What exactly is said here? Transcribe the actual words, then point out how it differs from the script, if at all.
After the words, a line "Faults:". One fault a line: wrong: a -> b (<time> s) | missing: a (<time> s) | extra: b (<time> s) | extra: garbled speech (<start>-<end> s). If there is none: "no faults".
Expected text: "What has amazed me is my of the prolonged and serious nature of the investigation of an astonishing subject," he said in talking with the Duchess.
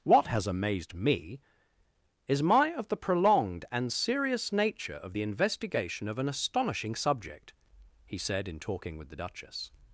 "What has amazed me is my of the prolonged and serious nature of the investigation of an astonishing subject," he said in talking with the Duchess.
Faults:
no faults